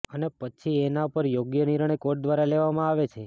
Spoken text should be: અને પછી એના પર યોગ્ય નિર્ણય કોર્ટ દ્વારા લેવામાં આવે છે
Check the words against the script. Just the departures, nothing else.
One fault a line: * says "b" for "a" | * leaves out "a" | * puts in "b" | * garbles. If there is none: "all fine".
all fine